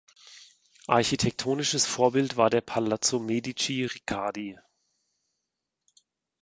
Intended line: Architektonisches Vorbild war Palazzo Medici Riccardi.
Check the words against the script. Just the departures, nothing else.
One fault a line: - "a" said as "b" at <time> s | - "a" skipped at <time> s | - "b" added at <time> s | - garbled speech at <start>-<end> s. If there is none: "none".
- "der" added at 2.5 s